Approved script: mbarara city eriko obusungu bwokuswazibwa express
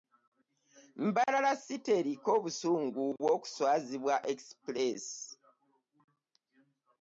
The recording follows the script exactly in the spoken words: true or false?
true